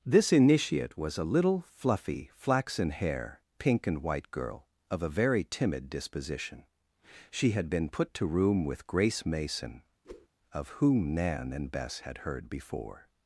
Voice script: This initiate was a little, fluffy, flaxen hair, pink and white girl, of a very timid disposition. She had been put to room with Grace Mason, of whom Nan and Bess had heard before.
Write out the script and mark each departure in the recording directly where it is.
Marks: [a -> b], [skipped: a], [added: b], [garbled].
This initiate was a little, fluffy, flaxen hair, pink and white girl, of a very timid disposition. She had been put to room with Grace Mason, of whom Nan and Bess had heard before.